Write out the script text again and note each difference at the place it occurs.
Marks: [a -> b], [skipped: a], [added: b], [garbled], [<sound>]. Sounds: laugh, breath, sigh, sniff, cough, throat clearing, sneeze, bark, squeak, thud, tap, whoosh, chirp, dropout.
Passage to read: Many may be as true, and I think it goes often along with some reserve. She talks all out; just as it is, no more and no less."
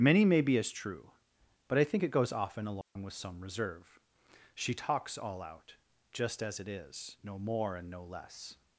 Many may be as true, [and -> but] I think it goes often along [dropout] with some reserve. She talks all out; just as it is, no more and no less."